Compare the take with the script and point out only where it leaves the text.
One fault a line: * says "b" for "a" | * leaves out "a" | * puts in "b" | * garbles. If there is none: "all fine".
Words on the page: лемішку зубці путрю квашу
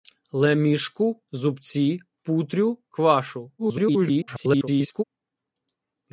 * garbles